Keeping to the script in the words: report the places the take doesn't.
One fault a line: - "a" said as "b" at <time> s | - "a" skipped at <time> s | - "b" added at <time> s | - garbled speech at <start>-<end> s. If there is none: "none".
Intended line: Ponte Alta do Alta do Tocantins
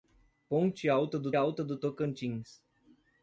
none